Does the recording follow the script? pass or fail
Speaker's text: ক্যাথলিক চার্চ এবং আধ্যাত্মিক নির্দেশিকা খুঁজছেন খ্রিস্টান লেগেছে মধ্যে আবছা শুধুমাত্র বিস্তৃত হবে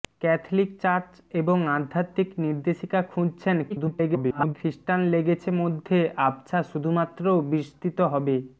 fail